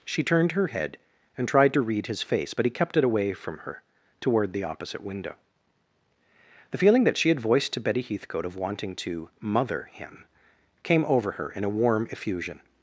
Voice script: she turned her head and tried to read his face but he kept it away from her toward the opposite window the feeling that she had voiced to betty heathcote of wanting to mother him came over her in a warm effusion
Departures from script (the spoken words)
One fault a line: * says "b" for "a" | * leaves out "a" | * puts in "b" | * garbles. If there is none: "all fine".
all fine